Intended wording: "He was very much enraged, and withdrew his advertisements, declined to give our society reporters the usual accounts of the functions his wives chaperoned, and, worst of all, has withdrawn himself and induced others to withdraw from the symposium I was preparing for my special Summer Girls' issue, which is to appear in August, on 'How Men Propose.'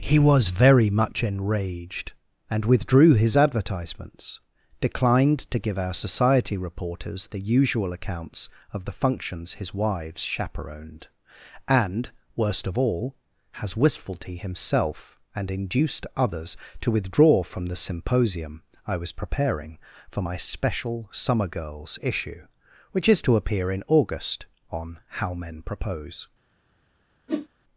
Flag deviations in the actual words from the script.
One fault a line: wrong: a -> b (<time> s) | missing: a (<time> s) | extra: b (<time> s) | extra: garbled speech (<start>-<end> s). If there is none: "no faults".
wrong: withdrawn -> wistfulty (13.8 s)